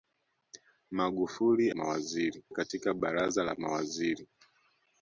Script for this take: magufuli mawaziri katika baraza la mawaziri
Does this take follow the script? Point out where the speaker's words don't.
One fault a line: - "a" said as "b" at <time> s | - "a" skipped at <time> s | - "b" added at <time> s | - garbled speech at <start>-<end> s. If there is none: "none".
none